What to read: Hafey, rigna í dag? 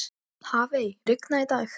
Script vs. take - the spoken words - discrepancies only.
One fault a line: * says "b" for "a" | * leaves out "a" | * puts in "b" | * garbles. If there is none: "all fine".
all fine